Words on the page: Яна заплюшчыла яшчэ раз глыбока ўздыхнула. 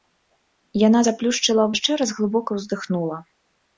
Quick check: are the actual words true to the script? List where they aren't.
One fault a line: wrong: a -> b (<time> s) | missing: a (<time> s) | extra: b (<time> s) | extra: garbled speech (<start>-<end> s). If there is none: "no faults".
no faults